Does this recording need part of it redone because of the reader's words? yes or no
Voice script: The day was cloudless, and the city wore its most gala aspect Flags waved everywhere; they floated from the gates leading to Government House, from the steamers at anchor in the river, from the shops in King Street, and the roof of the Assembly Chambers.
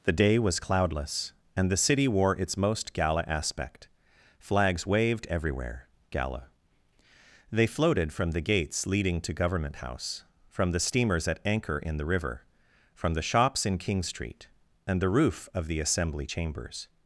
yes